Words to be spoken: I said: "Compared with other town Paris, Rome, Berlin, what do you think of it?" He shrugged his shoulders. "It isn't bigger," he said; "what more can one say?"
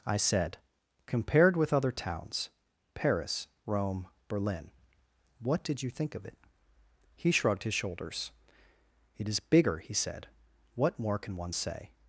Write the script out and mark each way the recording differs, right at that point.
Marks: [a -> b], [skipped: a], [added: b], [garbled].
I said: "Compared with other [town -> towns] Paris, Rome, Berlin, what [do -> did] you think of it?" He shrugged his shoulders. "It [isn't -> is] bigger," he said; "what more can one say?"